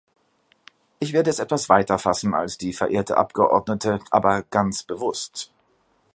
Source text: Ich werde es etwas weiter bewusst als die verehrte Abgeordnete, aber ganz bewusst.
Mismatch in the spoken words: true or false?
true